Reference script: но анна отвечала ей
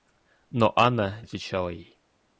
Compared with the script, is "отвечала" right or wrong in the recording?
right